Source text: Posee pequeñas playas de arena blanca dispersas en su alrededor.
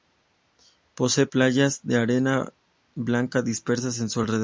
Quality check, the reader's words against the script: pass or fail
fail